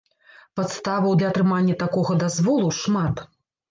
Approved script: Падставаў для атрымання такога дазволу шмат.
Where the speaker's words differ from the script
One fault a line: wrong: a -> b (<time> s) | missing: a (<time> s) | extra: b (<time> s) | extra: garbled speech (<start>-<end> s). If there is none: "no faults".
no faults